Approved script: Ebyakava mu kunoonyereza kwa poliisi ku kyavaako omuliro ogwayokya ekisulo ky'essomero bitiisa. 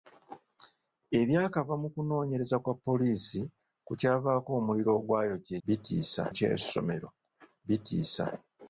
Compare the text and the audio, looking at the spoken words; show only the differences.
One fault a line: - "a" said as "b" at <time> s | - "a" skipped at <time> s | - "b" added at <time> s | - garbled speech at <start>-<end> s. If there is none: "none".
- "ekisulo" said as "bitiisa" at 5.7 s